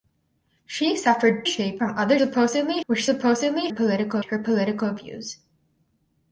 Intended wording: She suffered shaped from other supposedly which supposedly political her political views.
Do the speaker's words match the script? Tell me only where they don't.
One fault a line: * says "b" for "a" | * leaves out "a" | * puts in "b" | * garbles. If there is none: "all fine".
all fine